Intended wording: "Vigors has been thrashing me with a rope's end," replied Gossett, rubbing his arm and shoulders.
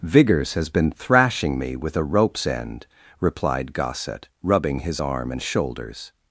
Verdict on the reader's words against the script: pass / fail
pass